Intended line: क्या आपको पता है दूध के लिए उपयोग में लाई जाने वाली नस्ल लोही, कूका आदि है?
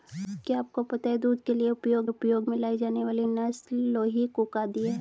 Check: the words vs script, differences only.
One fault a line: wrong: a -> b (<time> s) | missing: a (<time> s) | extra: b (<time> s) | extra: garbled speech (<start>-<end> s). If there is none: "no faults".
extra: उपयोग (2.1 s)